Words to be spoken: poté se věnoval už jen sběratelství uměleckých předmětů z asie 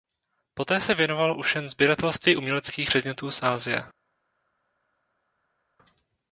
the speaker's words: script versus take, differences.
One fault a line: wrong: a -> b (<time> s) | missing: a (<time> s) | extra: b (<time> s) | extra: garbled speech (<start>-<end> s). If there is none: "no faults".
no faults